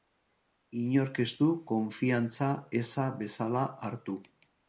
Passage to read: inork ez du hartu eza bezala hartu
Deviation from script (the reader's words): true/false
true